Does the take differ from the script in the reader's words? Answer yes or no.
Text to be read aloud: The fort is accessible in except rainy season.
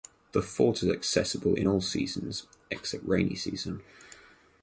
yes